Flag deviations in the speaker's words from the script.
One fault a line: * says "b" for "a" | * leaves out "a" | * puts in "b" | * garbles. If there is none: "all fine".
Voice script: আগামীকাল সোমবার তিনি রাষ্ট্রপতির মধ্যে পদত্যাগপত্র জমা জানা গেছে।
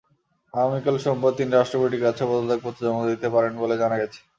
* says "কাছে" for "মধ্যে"
* puts in "দিতে পারেন বলে"